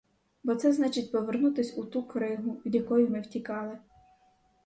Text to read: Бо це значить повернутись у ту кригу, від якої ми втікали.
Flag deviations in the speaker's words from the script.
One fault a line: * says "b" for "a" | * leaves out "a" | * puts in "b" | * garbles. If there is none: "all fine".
all fine